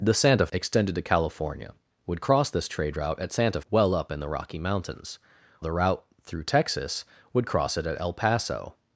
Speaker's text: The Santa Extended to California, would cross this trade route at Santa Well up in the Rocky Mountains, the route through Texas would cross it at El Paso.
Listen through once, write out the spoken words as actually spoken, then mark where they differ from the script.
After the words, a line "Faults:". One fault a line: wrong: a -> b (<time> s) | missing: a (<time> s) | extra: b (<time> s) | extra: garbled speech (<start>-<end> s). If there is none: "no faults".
The Santa Extended to California, would cross this trade route at Santa Well up in the Rocky Mountains, the route through Texas would cross it at El Paso.
Faults:
no faults